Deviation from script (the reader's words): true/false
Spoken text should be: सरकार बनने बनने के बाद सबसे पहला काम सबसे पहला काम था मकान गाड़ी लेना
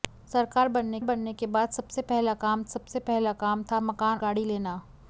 false